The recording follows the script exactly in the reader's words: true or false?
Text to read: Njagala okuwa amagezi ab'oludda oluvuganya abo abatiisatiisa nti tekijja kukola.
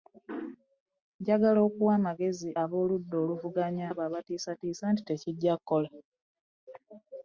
true